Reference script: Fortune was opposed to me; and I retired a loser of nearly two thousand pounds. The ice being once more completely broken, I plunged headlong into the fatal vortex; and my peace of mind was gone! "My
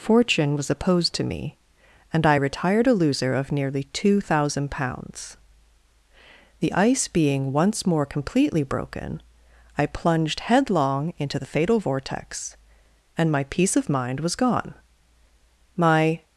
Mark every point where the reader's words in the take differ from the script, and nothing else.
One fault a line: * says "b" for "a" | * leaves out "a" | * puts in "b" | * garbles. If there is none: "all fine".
all fine